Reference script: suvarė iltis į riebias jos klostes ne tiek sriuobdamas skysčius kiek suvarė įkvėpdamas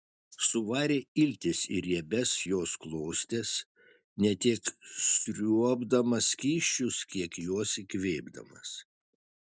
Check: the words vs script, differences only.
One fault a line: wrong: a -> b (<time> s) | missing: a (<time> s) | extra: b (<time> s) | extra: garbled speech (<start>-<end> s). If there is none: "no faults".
wrong: suvarė -> juos (7.5 s)